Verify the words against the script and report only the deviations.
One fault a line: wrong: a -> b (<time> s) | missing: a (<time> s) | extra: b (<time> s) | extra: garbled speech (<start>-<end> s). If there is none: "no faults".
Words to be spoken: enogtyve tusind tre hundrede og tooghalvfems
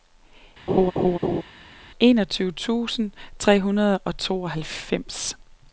no faults